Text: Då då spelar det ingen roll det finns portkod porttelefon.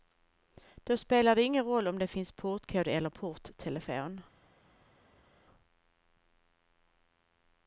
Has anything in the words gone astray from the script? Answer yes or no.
yes